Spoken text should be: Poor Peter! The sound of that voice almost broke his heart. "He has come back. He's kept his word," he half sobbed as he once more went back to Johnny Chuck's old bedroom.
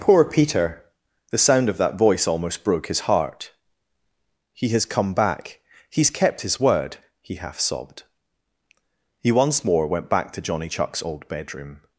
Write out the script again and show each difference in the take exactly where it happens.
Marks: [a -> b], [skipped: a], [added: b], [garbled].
Poor Peter! The sound of that voice almost broke his heart. "He has come back. He's kept his word," he half sobbed [skipped: as] he once more went back to Johnny Chuck's old bedroom.